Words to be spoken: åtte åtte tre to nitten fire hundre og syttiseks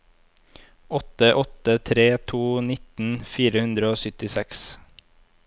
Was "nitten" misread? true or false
false